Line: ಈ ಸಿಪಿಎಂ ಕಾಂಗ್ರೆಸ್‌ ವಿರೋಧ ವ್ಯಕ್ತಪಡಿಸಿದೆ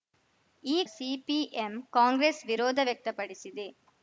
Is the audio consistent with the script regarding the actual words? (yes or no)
yes